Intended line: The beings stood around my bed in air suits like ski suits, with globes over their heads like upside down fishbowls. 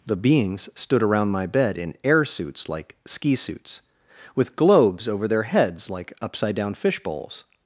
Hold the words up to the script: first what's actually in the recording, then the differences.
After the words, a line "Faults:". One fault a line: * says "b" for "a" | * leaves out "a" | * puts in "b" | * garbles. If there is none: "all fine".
The beings stood around my bed in air suits like ski suits, with globes over their heads like upside down fishbowls.
Faults:
all fine